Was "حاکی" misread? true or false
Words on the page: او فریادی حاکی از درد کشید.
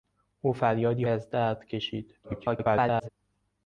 true